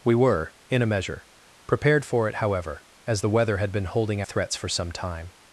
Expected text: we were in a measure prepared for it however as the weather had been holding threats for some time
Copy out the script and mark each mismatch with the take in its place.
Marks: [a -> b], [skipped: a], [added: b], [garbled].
we were in a measure prepared for it however as the weather had been holding threats for some time